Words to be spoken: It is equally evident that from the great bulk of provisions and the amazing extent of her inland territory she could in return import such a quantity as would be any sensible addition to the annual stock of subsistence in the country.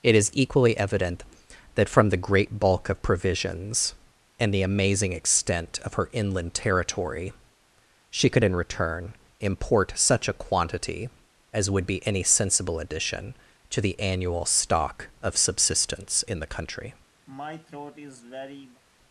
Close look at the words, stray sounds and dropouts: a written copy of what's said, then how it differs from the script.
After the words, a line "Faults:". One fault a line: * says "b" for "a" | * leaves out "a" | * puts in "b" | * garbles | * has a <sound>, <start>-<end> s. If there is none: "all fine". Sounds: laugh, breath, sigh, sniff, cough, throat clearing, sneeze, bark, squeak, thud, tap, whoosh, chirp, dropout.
It is equally evident that from the great bulk of provisions and the amazing extent of her inland territory she could in return import such a quantity as would be any sensible addition to the annual stock of subsistence in the country.
Faults:
* has a throat clearing, 17.3-18.8 s